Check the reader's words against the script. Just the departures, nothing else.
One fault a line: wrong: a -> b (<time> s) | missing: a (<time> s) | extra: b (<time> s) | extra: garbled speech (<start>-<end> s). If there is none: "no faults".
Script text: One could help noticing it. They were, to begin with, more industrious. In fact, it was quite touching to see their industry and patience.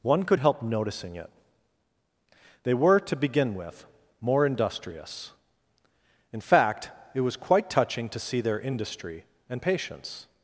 no faults